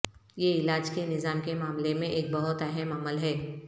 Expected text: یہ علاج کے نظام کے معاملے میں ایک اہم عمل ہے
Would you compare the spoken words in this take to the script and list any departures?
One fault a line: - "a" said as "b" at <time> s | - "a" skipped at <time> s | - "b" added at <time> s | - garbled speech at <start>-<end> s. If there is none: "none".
- "بہت" added at 2.3 s